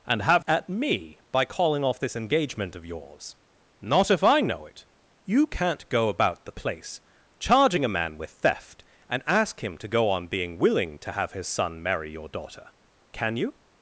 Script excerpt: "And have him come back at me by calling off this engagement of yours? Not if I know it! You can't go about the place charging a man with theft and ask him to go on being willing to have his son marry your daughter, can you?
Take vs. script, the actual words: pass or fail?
fail